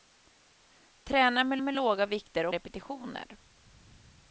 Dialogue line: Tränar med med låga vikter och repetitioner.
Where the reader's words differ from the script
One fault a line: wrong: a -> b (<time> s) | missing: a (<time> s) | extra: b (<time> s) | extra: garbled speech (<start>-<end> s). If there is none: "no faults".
no faults